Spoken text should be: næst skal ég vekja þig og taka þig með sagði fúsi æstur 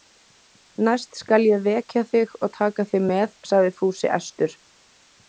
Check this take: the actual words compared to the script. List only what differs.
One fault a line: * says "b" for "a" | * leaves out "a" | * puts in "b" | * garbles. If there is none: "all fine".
all fine